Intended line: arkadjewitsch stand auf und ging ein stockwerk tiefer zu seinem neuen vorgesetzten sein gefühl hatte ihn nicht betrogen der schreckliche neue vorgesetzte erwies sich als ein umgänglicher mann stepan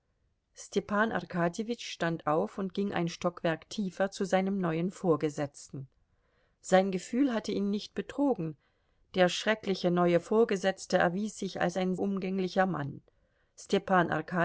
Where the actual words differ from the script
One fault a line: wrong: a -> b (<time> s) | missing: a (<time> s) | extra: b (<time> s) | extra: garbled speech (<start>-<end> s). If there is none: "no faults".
no faults